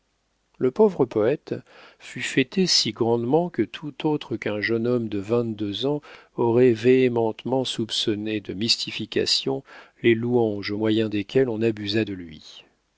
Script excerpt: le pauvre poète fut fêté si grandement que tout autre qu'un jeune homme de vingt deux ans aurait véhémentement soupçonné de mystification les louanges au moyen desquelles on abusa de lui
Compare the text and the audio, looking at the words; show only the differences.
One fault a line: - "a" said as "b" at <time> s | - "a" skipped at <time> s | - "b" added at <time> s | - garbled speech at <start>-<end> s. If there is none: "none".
none